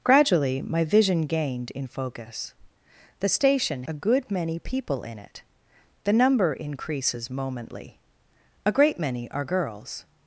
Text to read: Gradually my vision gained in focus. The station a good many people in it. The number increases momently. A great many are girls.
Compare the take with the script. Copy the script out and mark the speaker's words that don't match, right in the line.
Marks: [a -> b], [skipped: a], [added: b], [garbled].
Gradually my vision gained in focus. The station a good many people in it. The number increases momently. A great many are girls.